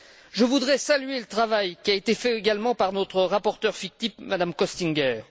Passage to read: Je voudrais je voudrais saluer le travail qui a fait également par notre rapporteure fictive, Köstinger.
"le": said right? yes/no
yes